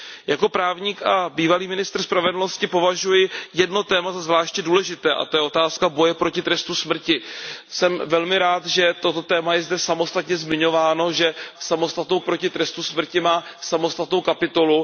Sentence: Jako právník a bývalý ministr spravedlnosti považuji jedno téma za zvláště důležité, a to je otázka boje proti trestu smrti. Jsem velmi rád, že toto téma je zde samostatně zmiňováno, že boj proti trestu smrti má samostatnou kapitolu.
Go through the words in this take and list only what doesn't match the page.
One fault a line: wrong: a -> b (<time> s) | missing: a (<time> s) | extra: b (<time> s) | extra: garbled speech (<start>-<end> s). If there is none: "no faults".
wrong: boj -> samostatnou (11.6 s)